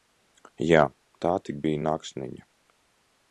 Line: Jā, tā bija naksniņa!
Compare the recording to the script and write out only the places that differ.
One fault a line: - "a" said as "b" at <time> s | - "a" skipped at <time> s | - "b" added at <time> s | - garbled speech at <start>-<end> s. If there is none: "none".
- "tik" added at 1.5 s